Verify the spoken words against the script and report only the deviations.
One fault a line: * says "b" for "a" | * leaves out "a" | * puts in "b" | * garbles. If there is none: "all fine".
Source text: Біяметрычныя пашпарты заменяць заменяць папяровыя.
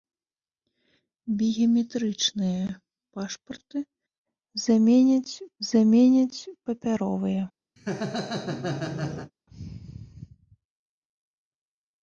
all fine